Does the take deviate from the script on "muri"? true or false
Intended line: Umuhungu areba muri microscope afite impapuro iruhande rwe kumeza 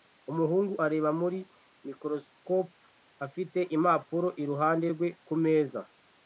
false